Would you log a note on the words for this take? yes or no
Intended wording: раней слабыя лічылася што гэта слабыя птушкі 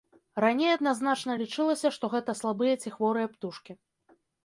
yes